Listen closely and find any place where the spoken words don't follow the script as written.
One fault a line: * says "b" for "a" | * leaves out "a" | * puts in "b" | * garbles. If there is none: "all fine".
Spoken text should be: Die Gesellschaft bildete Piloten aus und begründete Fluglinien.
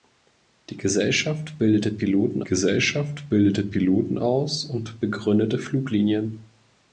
* puts in "Gesellschaft bildete Piloten"